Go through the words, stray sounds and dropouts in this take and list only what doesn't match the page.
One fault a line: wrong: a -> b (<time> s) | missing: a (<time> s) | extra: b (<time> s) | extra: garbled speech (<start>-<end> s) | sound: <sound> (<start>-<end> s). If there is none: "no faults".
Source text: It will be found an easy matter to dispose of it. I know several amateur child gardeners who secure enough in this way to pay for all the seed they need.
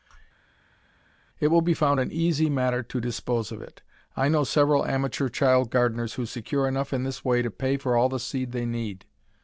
no faults